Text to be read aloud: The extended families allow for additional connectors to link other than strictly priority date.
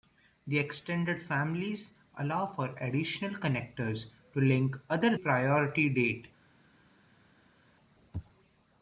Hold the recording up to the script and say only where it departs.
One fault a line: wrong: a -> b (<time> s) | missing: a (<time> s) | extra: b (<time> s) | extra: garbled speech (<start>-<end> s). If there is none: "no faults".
missing: than strictly (5.2 s)